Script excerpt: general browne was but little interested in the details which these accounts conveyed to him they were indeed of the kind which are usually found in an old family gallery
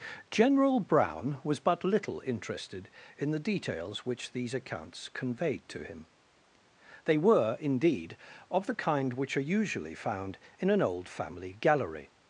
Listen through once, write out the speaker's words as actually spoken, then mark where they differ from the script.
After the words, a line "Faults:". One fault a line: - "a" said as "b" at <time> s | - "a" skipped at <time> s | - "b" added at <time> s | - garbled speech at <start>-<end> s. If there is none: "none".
general browne was but little interested in the details which these accounts conveyed to him they were indeed of the kind which are usually found in an old family gallery
Faults:
none